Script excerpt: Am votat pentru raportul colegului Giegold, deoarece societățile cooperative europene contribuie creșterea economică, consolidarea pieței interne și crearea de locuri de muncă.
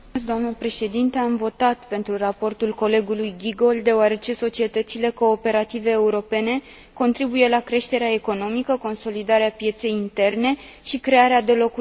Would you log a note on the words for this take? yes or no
yes